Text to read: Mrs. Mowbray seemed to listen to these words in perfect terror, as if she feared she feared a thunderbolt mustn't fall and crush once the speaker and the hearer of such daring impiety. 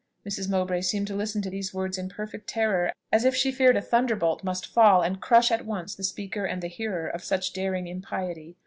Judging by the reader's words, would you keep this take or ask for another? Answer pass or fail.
fail